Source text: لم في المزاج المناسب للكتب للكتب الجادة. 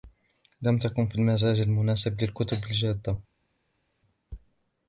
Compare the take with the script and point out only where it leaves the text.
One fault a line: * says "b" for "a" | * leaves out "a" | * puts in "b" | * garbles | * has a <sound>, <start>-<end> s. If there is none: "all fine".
* puts in "تكن"
* leaves out "للكتب"